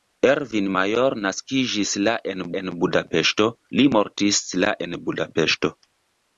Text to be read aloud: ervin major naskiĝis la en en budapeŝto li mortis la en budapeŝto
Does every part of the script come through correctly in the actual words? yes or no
yes